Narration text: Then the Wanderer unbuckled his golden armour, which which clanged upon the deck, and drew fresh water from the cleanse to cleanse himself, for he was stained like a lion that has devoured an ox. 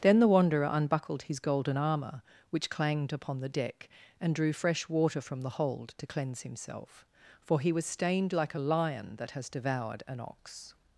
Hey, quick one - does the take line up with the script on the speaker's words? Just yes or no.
no